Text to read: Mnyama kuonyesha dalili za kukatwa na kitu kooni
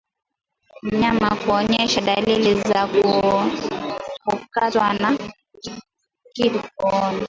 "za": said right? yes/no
no